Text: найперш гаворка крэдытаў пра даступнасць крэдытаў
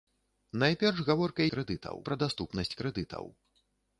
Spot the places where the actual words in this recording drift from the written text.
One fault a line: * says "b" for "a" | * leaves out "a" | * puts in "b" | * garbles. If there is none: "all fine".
all fine